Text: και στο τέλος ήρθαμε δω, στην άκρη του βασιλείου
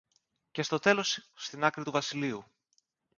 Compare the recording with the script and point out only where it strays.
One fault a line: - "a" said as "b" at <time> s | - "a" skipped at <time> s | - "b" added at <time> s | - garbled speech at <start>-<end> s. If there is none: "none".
- "ήρθαμε δω" skipped at 1.3 s